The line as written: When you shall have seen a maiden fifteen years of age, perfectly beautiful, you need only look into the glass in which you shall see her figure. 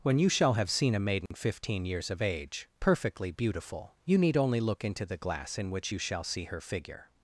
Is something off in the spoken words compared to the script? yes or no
no